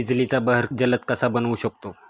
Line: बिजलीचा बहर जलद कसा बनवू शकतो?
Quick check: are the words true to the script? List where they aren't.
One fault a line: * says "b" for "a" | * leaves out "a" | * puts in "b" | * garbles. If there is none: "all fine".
all fine